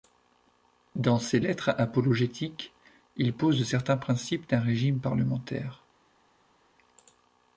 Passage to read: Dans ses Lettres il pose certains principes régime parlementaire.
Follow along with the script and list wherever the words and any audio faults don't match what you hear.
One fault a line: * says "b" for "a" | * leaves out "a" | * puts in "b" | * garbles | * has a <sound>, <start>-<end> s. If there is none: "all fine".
* puts in "apologétiques"
* puts in "d'un"